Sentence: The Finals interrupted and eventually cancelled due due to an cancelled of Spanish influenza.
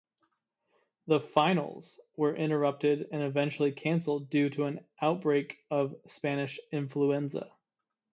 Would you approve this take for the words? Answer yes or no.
no